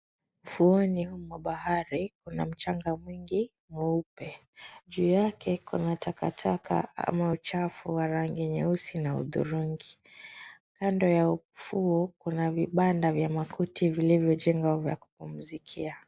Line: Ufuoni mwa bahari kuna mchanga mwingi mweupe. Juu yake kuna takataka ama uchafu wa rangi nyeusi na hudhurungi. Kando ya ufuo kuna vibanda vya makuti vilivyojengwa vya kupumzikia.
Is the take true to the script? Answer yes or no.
yes